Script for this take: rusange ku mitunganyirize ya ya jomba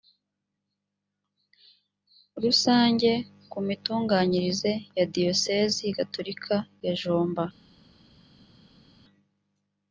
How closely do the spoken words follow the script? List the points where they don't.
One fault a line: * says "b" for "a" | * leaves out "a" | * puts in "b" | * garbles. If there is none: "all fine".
* puts in "diyosezi gatolika"